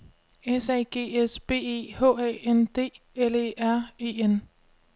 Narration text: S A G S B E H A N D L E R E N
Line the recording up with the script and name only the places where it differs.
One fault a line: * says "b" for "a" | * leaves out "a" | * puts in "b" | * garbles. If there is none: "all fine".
all fine